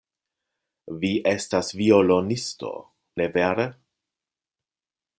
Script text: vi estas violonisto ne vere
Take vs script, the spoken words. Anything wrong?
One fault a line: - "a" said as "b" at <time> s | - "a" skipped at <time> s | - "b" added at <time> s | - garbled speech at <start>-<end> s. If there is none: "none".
none